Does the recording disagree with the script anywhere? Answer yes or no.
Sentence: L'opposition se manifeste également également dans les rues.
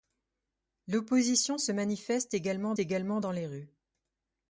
no